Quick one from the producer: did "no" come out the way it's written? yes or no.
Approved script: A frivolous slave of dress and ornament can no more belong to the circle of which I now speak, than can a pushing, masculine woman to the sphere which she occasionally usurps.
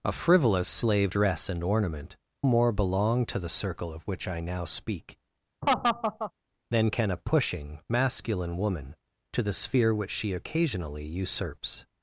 no